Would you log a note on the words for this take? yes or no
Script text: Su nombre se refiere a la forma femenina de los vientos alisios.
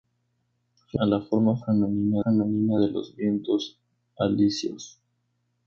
yes